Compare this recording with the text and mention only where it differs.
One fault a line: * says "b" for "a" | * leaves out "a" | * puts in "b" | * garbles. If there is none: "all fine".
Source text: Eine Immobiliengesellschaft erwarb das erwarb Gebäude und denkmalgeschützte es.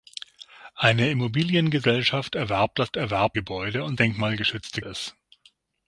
all fine